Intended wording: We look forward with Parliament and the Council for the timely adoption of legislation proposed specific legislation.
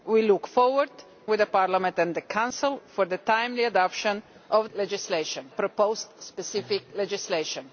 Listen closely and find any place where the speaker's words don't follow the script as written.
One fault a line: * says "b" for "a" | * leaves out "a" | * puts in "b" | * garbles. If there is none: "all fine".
all fine